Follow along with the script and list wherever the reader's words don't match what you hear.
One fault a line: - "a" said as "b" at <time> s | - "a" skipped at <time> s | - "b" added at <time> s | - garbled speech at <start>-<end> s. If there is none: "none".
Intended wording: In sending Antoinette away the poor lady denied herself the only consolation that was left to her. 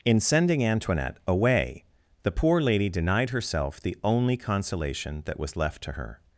none